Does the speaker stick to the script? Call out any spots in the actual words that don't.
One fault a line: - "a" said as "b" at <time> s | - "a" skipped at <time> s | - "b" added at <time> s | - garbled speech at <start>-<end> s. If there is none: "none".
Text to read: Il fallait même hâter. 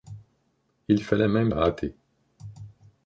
none